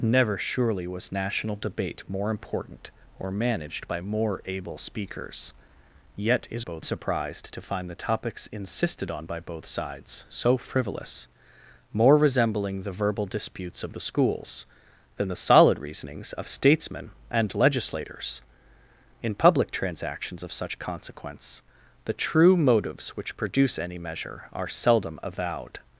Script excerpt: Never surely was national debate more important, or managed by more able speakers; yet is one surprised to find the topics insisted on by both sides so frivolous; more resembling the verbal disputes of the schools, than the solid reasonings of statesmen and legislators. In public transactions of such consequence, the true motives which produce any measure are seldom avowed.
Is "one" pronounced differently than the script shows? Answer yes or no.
yes